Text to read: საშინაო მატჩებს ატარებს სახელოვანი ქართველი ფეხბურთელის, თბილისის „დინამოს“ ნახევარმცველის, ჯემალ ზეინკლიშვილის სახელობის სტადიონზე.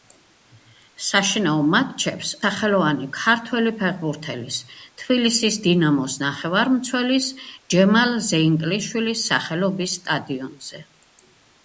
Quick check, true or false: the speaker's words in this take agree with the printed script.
false